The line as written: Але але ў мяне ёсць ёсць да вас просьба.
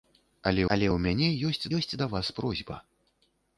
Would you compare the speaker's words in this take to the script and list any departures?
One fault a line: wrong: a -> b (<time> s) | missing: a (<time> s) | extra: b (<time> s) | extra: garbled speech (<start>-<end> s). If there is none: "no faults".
no faults